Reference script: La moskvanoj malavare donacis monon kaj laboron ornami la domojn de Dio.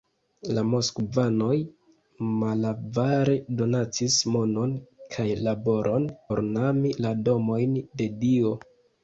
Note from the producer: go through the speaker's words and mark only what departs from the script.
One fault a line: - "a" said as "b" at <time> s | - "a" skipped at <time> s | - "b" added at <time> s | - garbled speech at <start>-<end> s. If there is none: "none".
none